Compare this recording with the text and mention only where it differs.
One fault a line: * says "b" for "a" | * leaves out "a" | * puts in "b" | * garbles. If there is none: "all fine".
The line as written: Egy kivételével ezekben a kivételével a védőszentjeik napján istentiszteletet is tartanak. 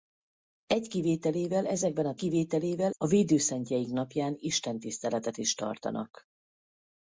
all fine